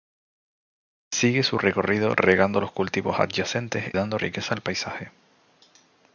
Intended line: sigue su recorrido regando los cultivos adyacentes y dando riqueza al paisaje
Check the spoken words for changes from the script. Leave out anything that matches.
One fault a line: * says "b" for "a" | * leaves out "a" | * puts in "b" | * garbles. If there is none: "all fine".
* leaves out "y"